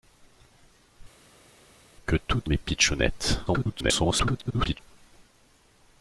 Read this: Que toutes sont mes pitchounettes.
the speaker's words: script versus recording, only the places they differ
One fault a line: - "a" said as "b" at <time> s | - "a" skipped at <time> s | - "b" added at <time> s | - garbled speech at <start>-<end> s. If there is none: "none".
- "sont" skipped at 2.5 s
- garbled speech at 3.5-4.8 s